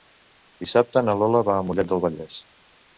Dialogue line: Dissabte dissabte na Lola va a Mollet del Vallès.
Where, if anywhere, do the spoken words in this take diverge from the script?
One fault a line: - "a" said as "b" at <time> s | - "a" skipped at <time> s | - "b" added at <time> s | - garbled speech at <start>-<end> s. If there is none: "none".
- "dissabte" skipped at 1.1 s